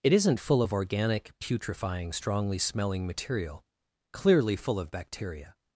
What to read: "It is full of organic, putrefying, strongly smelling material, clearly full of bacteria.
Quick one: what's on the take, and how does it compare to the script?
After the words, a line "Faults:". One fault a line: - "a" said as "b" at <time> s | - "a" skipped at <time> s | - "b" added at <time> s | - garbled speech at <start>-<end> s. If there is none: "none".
"It isn't full of organic, putrefying, strongly smelling material, clearly full of bacteria.
Faults:
- "is" said as "isn't" at 0.1 s